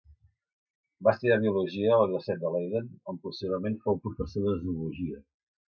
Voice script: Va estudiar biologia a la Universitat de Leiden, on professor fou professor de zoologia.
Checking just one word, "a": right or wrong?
right